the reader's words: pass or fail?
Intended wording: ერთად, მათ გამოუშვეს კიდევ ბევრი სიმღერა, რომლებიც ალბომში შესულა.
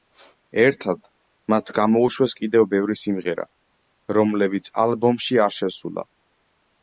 fail